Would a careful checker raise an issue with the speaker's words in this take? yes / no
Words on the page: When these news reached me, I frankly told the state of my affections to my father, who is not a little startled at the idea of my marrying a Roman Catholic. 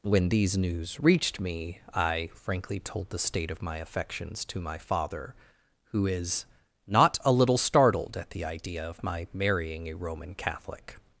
no